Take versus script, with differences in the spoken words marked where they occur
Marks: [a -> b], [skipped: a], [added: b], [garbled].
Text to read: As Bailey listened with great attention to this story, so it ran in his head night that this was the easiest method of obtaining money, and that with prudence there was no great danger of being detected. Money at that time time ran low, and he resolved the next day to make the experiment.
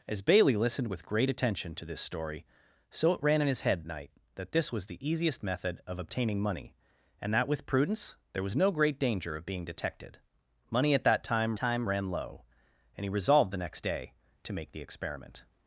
As Bailey listened with great attention to this story, so it ran in his head night that this was the easiest method of obtaining money, and that with prudence there was no great danger of being detected. Money at that time time ran low, and he resolved the next day to make the experiment.